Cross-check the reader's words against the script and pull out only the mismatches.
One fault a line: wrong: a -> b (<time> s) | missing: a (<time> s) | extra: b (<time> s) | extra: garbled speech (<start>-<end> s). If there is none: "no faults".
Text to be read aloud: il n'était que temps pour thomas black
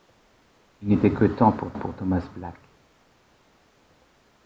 extra: pour (1.7 s)